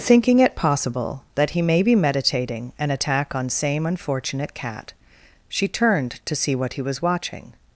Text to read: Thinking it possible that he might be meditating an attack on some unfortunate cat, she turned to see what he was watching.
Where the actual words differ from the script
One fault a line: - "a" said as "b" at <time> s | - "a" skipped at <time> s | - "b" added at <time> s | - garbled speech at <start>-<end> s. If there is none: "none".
- "might" said as "may" at 1.6 s
- "some" said as "same" at 3.5 s